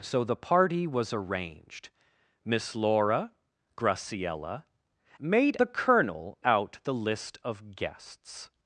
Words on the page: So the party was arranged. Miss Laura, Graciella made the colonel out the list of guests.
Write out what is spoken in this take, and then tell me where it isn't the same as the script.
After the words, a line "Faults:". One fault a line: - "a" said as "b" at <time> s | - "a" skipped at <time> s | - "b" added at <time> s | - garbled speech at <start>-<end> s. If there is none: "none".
So the party was arranged. Miss Laura, Graciella made the colonel out the list of guests.
Faults:
none